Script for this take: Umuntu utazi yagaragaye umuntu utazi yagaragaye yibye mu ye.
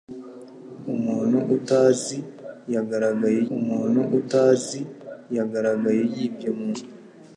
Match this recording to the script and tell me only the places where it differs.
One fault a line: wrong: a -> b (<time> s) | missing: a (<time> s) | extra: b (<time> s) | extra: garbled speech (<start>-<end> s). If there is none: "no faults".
no faults